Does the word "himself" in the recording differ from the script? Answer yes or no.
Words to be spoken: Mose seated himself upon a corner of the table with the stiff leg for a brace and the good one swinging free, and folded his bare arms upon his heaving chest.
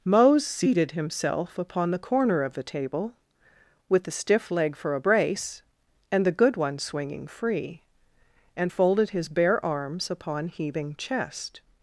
no